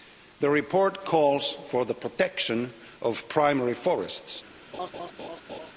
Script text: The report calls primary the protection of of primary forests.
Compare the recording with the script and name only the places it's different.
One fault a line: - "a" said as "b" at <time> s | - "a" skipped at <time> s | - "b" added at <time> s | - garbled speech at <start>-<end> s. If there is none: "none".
- "primary" said as "for" at 1.7 s
- "of" skipped at 3.3 s